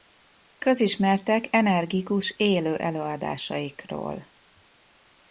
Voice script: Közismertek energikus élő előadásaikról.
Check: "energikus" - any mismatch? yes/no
no